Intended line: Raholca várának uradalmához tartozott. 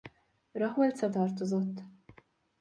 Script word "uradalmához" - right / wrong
wrong